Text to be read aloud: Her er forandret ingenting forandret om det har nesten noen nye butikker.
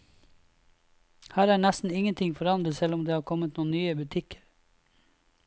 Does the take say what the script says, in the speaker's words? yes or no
no